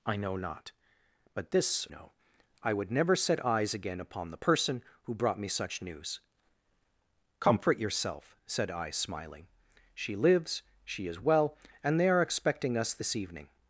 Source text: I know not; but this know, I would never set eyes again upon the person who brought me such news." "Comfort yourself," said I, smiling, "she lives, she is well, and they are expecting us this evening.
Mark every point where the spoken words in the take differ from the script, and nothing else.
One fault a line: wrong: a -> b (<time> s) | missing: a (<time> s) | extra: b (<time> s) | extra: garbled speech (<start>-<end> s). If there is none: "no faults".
no faults